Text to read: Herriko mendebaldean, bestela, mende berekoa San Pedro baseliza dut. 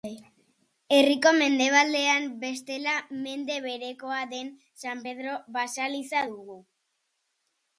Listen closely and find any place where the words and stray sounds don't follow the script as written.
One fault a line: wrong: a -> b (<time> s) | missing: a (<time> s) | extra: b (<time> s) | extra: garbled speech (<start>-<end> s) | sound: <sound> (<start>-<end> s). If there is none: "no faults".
extra: den (4.3 s)
wrong: dut -> dugu (6.3 s)